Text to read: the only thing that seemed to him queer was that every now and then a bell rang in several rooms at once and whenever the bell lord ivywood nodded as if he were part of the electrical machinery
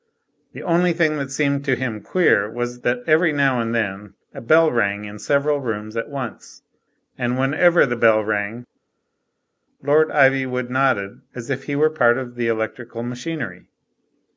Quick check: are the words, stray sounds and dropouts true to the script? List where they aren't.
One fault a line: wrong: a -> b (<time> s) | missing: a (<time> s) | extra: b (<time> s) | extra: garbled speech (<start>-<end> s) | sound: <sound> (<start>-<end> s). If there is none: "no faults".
extra: rang (8.2 s)